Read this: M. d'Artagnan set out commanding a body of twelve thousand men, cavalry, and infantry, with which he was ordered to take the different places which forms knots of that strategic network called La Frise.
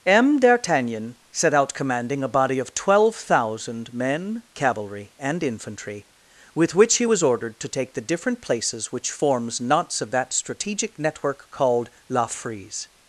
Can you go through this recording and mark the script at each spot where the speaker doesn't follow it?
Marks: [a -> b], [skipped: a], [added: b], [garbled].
M. d'Artagnan set out commanding a body of twelve thousand men, cavalry, and infantry, with which he was ordered to take the different places which forms knots of that strategic network called La Frise.